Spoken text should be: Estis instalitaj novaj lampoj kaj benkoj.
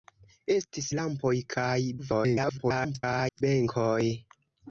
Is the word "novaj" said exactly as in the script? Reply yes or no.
no